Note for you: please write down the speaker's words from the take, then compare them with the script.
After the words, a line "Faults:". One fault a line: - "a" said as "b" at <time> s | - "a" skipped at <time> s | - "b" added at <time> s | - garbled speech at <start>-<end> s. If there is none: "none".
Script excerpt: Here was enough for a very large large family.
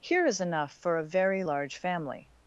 Here is enough for a very large family.
Faults:
- "was" said as "is" at 0.2 s
- "large" skipped at 1.8 s